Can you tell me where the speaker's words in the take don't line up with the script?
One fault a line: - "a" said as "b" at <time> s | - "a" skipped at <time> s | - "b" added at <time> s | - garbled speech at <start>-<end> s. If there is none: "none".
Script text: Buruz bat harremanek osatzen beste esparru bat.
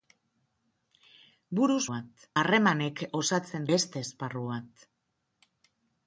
none